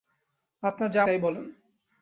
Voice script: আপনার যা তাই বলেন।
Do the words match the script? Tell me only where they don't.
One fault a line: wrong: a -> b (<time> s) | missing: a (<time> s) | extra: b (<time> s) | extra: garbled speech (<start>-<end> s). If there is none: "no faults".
no faults